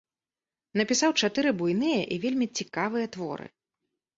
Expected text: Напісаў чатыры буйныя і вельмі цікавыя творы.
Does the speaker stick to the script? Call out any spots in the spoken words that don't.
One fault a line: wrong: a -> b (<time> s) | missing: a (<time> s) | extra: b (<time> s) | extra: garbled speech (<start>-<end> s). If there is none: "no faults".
no faults